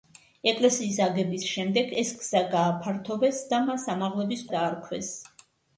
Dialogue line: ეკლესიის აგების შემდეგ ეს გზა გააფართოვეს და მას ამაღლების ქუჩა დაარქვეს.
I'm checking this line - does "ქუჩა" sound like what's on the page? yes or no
no